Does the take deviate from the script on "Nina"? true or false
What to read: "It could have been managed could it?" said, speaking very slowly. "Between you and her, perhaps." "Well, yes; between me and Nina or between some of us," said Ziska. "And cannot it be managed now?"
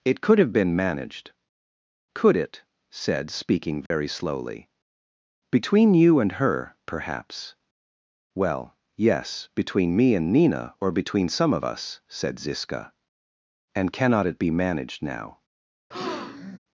false